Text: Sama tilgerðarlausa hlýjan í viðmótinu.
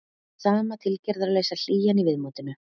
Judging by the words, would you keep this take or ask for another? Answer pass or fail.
pass